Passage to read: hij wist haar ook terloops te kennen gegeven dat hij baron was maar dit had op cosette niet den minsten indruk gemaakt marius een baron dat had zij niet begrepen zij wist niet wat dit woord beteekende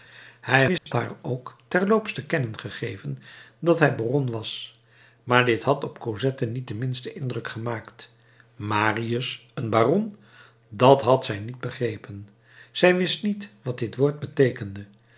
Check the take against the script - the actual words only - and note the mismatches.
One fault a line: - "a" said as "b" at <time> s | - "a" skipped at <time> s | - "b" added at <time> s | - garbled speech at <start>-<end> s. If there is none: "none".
none